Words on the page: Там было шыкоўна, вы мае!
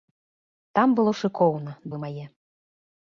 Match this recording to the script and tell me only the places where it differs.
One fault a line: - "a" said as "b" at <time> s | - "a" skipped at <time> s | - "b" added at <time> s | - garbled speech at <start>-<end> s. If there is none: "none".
none